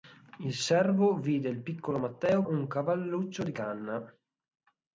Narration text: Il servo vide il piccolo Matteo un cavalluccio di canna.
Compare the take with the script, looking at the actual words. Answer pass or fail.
pass